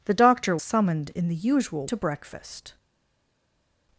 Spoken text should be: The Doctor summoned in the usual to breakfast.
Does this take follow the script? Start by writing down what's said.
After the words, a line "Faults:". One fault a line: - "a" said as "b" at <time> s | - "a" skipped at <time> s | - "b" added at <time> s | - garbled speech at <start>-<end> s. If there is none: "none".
The Doctor summoned in the usual to breakfast.
Faults:
none